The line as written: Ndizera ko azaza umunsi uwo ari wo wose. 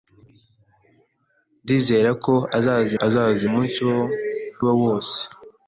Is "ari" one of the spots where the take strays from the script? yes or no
yes